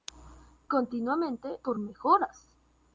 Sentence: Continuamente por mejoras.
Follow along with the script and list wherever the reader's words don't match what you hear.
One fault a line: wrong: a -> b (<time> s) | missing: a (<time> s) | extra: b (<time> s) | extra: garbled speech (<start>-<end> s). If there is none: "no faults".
no faults